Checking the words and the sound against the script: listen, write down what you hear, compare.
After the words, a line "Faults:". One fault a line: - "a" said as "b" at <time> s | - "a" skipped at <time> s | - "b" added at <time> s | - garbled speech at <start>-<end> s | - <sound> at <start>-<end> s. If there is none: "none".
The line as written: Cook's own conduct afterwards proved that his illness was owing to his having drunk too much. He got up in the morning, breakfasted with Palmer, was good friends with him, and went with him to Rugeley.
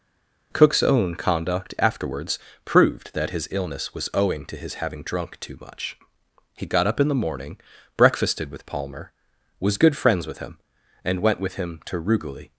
Cook's own conduct afterwards proved that his illness was owing to his having drunk too much. He got up in the morning, breakfasted with Palmer, was good friends with him, and went with him to Rugeley.
Faults:
none